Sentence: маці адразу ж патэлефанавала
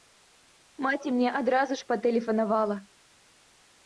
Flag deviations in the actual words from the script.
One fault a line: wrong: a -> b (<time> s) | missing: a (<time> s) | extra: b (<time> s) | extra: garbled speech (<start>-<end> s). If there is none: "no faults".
extra: мне (1.2 s)